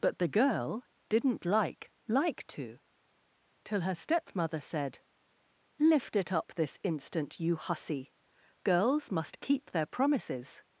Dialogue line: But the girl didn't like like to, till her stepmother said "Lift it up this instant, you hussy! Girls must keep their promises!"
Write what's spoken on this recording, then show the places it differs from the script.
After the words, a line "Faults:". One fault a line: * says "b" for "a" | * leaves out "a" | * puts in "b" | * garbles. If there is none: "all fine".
But the girl didn't like like to, till her stepmother said "Lift it up this instant, you hussy! Girls must keep their promises!"
Faults:
all fine